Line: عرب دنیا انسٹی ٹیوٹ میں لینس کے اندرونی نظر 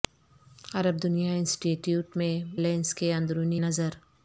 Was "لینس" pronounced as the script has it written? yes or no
yes